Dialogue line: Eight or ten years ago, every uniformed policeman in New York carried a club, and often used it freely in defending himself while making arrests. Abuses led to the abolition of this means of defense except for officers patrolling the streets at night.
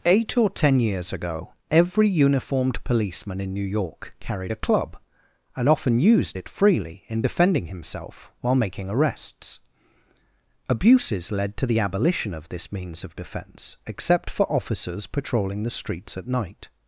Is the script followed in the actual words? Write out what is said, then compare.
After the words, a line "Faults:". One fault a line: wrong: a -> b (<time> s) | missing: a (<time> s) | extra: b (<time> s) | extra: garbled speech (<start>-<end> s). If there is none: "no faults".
Eight or ten years ago, every uniformed policeman in New York carried a club, and often used it freely in defending himself while making arrests. Abuses led to the abolition of this means of defense except for officers patrolling the streets at night.
Faults:
no faults